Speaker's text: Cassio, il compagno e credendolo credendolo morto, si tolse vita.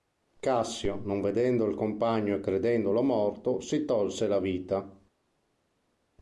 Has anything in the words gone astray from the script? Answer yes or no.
yes